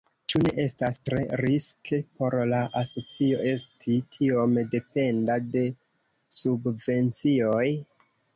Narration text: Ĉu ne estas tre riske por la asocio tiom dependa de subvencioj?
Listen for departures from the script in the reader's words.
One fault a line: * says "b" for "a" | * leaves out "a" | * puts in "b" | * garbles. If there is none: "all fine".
* puts in "esti"